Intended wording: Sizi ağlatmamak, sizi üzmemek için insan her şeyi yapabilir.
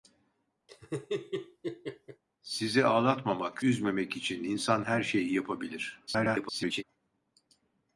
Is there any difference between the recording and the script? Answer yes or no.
yes